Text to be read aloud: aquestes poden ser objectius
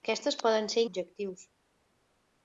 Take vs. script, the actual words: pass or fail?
pass